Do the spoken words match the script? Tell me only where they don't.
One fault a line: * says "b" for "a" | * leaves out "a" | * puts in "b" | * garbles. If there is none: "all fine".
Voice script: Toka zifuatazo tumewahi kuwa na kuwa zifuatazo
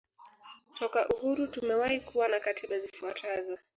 * says "uhuru" for "zifuatazo"
* says "katiba" for "kuwa"